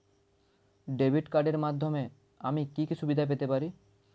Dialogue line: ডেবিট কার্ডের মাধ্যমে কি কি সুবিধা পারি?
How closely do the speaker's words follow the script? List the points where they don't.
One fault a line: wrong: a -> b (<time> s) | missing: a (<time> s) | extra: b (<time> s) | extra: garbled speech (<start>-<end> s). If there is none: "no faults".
extra: আমি (2.4 s)
extra: পেতে (3.2 s)